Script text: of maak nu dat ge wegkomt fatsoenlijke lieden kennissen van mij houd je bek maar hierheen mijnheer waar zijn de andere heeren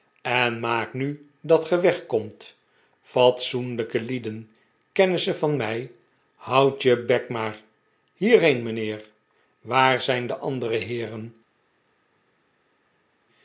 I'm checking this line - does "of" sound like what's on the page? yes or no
no